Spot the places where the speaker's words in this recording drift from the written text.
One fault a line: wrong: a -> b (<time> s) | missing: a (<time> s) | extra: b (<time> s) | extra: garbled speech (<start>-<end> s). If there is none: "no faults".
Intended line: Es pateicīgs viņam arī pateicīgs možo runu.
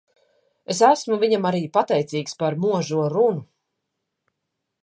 wrong: pateicīgs -> esmu (0.9 s)
extra: par (2.4 s)